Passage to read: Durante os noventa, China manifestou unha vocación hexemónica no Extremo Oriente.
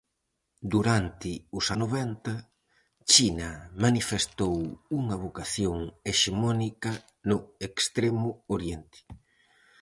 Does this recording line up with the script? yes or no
yes